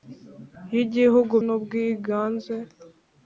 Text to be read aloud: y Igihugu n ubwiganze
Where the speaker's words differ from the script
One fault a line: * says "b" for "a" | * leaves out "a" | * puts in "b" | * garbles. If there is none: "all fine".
all fine